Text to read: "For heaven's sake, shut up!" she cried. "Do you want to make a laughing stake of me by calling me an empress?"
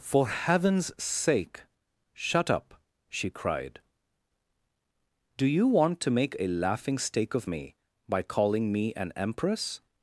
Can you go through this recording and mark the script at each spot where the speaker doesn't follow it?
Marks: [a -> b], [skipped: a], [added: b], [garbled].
"For heaven's sake, shut up!" she cried. "Do you want to make a laughing stake of me by calling me an empress?"